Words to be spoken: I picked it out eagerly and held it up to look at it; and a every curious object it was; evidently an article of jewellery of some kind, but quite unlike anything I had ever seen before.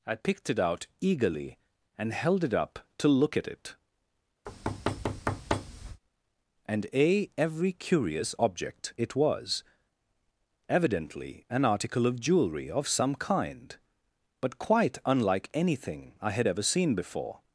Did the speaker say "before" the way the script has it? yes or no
yes